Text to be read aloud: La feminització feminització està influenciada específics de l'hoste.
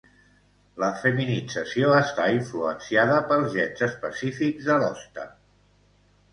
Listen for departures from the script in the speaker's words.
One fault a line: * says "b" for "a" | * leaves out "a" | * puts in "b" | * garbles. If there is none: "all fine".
* leaves out "feminització"
* puts in "pels gens"